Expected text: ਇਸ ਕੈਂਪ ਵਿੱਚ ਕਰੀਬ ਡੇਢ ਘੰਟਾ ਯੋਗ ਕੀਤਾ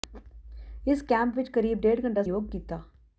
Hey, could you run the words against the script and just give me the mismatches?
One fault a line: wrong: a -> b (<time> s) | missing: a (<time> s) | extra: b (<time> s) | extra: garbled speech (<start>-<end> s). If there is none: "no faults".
no faults